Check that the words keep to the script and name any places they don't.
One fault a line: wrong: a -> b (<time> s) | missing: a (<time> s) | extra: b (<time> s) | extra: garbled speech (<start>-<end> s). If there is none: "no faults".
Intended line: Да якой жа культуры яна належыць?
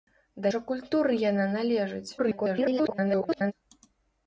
missing: якой (0.5 s)
extra: garbled speech (2.2-3.5 s)